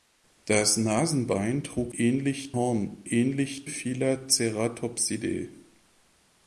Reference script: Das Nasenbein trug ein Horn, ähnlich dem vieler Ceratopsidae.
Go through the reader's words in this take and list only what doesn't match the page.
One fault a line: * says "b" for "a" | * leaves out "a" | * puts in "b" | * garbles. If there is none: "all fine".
* says "ähnlich" for "ein"
* leaves out "dem"